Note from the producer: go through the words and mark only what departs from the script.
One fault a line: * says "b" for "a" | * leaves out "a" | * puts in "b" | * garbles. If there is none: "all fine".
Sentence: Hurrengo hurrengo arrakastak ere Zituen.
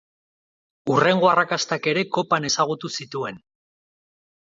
* leaves out "hurrengo"
* puts in "Kopan ezagutu"